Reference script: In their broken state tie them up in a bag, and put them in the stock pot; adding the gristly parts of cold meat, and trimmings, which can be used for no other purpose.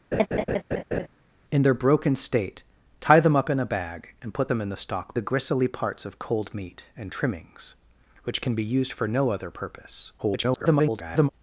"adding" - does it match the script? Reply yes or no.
no